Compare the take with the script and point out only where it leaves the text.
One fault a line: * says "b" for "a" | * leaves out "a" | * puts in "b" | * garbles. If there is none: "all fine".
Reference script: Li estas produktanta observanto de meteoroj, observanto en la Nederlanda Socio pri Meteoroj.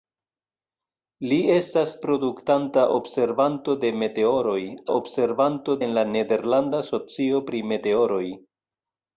all fine